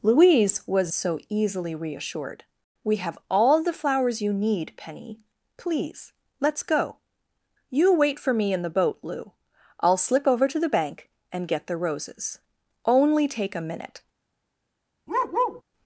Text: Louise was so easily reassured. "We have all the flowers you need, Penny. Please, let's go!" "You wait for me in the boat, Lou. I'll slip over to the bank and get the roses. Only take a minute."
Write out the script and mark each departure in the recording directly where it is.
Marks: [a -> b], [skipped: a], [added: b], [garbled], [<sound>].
Louise was so easily reassured. "We have all the flowers you need, Penny. Please, let's go!" "You wait for me in the boat, Lou. I'll slip over to the bank and get the roses. Only take a minute." [bark]